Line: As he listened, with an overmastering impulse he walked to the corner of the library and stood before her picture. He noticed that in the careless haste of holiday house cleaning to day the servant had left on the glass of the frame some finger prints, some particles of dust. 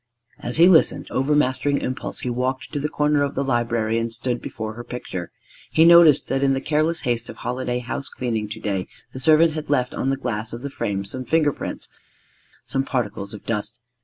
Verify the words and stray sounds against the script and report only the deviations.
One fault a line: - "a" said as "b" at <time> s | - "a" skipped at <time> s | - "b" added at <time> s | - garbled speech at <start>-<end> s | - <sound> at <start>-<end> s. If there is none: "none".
- "with an" skipped at 1.1 s